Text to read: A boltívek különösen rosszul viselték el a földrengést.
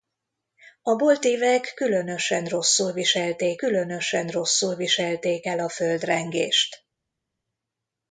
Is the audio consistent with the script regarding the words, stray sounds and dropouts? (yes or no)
no